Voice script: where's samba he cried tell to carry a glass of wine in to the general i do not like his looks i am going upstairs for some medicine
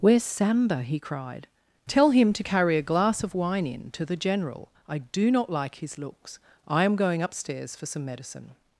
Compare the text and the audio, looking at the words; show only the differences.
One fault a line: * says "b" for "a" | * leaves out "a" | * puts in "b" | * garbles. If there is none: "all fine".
* puts in "him"